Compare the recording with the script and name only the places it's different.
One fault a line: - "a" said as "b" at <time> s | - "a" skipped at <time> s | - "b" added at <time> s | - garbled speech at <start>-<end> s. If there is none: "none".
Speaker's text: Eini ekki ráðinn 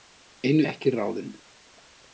none